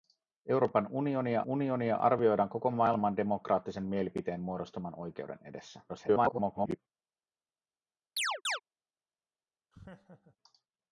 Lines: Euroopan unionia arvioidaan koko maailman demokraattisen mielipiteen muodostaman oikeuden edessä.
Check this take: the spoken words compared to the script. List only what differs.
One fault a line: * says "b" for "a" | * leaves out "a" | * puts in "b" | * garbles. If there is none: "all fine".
* puts in "unionia"
* garbles